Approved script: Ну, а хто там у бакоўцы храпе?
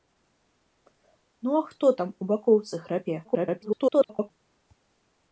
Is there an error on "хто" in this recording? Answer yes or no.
no